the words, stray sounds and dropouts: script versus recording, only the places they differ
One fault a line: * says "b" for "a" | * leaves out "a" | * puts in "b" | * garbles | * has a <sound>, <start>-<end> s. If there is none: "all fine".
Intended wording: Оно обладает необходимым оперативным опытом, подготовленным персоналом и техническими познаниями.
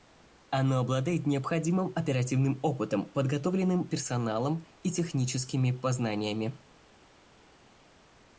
all fine